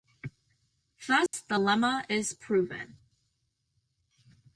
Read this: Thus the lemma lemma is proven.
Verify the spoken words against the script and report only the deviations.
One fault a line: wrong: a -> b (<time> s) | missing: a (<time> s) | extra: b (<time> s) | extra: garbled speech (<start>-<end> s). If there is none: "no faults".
missing: lemma (2.1 s)